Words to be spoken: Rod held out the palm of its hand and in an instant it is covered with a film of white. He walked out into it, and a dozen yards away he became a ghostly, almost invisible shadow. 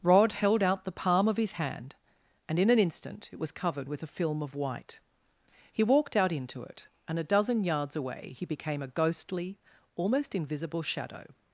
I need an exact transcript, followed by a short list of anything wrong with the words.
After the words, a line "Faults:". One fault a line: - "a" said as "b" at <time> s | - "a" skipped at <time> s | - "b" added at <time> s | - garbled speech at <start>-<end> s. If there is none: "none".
Rod held out the palm of his hand and in an instant it was covered with a film of white. He walked out into it, and a dozen yards away he became a ghostly, almost invisible shadow.
Faults:
- "its" said as "his" at 1.4 s
- "is" said as "was" at 3.4 s